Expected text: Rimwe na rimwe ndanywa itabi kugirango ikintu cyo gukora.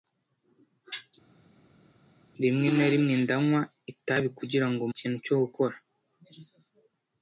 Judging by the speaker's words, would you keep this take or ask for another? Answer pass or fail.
pass